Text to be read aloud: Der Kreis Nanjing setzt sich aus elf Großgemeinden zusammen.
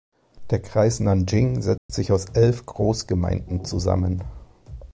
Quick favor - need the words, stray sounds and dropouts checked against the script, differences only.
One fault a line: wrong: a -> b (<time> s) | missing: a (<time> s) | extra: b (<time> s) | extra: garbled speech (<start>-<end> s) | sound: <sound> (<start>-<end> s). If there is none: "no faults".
sound: dropout (1.8-1.9 s)